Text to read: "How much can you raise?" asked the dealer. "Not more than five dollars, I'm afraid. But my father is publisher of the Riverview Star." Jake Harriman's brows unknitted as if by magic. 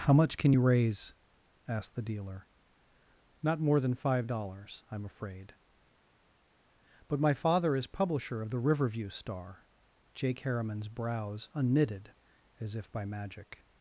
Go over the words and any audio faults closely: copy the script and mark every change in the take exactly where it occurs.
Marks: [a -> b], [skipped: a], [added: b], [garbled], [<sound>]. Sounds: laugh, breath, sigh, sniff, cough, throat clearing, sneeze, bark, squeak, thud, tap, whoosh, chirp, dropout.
"How much can you raise?" asked the dealer. "Not more than five dollars, I'm afraid. But my father is publisher of the Riverview Star." Jake Harriman's brows unknitted as if by magic.